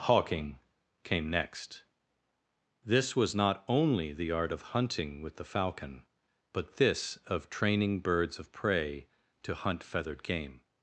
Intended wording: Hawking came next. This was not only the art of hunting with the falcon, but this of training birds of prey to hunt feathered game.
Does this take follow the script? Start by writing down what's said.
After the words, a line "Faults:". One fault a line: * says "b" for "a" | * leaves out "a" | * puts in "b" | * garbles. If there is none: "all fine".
Hawking came next. This was not only the art of hunting with the falcon, but this of training birds of prey to hunt feathered game.
Faults:
all fine